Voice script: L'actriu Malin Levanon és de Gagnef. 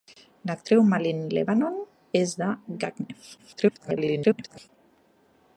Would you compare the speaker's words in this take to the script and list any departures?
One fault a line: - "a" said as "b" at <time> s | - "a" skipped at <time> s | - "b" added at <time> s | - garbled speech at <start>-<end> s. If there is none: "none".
- garbled speech at 3.4-4.7 s